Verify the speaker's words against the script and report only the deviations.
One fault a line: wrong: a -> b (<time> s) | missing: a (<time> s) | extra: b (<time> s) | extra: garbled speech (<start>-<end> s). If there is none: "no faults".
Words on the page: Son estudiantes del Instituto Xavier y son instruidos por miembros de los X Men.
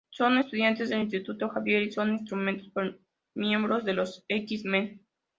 no faults